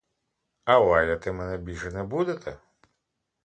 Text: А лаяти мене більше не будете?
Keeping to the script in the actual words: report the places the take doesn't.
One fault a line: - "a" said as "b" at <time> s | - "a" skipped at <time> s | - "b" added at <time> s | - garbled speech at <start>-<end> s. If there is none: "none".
none